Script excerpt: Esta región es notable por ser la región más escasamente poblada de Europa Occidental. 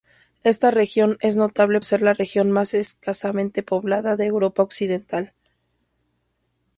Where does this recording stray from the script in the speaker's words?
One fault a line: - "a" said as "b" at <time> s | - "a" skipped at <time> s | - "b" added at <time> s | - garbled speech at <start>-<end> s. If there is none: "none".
- "por" skipped at 1.8 s